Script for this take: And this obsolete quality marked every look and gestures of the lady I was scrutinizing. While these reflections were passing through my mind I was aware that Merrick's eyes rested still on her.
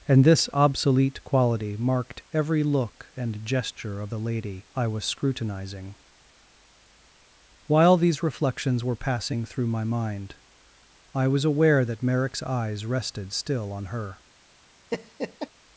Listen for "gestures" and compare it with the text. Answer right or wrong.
wrong